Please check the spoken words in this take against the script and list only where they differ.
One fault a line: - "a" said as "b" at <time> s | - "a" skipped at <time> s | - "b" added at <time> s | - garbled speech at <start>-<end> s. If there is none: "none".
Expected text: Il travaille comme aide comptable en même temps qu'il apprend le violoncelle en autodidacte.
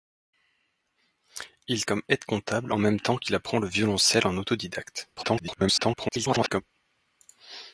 - "travaille" skipped at 1.9 s
- garbled speech at 5.2-6.6 s